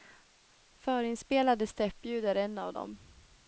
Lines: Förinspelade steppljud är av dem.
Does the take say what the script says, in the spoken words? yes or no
no